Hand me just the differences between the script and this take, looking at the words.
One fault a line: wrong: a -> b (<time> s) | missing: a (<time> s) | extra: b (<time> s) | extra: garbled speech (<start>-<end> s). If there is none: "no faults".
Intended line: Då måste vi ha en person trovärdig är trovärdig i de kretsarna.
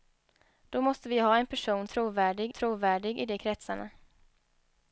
no faults